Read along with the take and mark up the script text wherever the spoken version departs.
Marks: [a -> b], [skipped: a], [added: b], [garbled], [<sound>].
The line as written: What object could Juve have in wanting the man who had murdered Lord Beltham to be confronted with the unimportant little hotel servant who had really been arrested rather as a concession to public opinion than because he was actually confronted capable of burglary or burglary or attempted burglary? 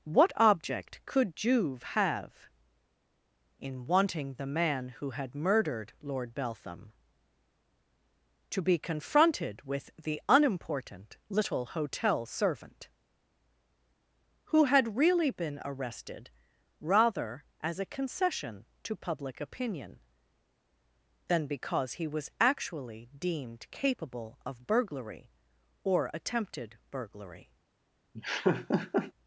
What object could Juve have in wanting the man who had murdered Lord Beltham to be confronted with the unimportant little hotel servant who had really been arrested rather as a concession to public opinion than because he was actually [confronted -> deemed] capable of burglary or [skipped: burglary or] attempted burglary? [laugh]